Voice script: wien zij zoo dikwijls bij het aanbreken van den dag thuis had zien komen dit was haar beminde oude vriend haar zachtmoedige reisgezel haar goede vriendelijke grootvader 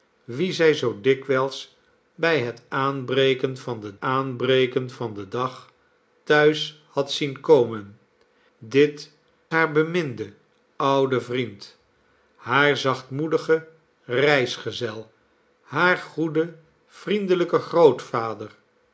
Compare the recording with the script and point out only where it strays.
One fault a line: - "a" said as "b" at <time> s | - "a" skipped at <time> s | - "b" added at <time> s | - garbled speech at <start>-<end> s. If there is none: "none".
- "aanbreken van den" added at 4.0 s
- "was" skipped at 9.1 s